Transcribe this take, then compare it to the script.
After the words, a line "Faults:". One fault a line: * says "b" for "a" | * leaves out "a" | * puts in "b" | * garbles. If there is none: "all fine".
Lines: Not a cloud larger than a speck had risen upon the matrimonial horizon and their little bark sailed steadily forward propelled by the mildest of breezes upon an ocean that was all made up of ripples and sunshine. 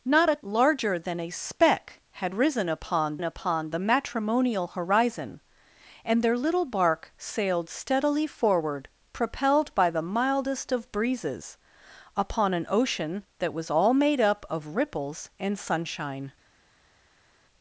Not a larger than a speck had risen upon upon the matrimonial horizon and their little bark sailed steadily forward propelled by the mildest of breezes upon an ocean that was all made up of ripples and sunshine.
Faults:
* leaves out "cloud"
* puts in "upon"